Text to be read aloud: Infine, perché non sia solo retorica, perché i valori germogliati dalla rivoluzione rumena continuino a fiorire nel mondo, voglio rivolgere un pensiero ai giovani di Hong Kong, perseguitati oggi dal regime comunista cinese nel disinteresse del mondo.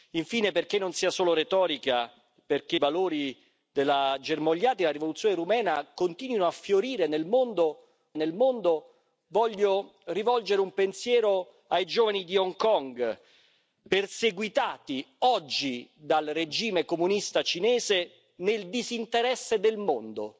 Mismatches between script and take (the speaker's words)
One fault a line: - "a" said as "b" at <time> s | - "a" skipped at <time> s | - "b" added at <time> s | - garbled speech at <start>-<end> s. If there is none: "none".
- "i" skipped at 2.8 s
- "nel mondo" added at 8.1 s